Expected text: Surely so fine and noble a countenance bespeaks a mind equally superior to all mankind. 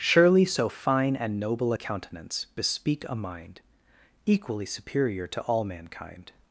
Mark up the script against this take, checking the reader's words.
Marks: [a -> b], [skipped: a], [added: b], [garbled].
Surely so fine and noble a countenance [bespeaks -> bespeak] a mind equally superior to all mankind.